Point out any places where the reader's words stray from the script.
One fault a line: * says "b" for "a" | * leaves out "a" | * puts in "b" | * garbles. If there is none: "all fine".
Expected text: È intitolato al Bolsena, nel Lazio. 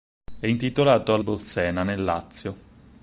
all fine